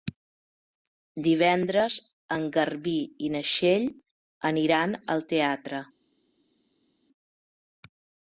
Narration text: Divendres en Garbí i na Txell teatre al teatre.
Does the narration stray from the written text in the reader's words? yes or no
yes